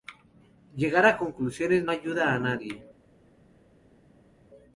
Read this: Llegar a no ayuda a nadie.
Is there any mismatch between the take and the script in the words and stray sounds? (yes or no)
yes